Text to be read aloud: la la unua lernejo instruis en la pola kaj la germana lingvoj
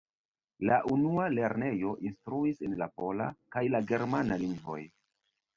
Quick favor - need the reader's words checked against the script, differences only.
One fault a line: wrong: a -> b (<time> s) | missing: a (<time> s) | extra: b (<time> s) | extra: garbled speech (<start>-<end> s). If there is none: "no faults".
missing: la (0.8 s)